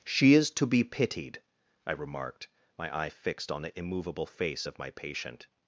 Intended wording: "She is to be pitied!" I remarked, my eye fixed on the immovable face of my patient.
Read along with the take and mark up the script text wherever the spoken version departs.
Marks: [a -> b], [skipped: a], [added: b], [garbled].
"She is to be pitied!" I remarked, my eye fixed on the immovable face of my patient.